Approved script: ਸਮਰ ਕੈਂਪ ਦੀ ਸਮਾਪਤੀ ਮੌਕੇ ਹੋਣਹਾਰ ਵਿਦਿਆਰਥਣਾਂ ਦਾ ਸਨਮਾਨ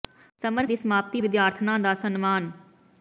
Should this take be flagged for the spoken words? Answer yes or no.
yes